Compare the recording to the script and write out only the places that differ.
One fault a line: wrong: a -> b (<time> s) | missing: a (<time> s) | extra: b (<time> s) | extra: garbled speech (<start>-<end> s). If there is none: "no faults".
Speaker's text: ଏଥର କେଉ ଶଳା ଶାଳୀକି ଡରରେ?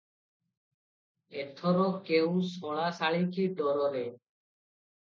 no faults